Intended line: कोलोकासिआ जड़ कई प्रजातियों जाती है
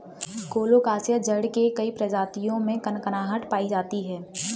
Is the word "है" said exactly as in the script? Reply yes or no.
yes